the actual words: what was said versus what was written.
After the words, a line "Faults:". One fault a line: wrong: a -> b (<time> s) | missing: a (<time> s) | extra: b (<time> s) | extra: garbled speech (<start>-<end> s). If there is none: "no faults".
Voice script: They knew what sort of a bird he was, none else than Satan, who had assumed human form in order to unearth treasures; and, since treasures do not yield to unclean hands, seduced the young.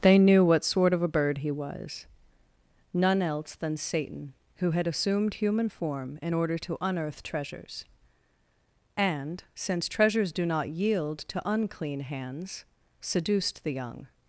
They knew what sort of a bird he was, none else than Satan, who had assumed human form in order to unearth treasures; and, since treasures do not yield to unclean hands, seduced the young.
Faults:
no faults